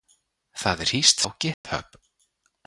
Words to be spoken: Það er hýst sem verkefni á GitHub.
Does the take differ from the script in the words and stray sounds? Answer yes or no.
yes